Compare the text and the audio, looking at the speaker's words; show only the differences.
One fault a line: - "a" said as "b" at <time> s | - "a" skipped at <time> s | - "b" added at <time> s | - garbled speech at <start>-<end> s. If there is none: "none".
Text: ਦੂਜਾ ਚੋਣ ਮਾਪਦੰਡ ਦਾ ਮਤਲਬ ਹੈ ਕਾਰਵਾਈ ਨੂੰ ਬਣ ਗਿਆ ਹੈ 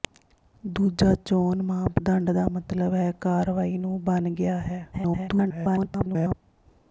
- garbled speech at 4.9-6.3 s